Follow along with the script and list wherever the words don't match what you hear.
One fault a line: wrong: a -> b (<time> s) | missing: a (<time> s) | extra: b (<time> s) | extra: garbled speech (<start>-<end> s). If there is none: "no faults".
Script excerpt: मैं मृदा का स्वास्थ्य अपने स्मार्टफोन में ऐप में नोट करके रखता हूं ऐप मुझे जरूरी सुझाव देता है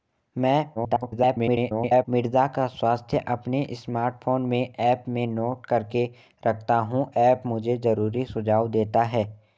extra: garbled speech (0.8-2.0 s)